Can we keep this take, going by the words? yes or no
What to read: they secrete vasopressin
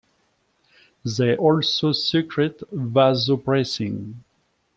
no